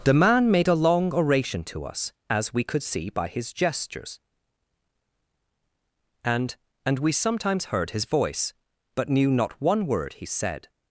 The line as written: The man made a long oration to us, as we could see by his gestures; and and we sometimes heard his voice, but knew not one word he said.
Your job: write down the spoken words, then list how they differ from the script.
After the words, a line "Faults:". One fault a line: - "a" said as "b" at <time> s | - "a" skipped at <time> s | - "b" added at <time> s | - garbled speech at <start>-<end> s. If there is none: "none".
The man made a long oration to us, as we could see by his gestures; and and we sometimes heard his voice, but knew not one word he said.
Faults:
none